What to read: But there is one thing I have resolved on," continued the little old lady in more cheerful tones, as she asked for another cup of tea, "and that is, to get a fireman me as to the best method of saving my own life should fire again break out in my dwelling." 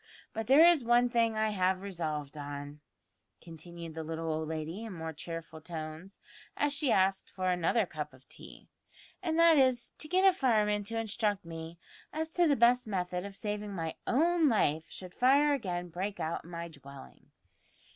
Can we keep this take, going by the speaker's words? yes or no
no